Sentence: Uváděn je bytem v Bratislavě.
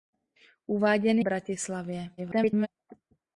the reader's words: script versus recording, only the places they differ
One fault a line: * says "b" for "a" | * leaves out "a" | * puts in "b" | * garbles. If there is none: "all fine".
* leaves out "je bytem"
* garbles